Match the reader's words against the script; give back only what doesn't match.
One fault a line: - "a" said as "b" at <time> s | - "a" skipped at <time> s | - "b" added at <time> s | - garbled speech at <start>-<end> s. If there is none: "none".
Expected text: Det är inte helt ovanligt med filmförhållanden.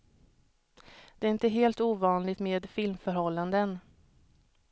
none